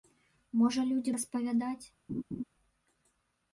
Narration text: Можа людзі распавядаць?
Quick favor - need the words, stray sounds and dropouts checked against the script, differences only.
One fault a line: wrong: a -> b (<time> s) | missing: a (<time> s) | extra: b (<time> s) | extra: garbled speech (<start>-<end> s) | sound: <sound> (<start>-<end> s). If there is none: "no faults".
sound: laugh (2.1-2.4 s)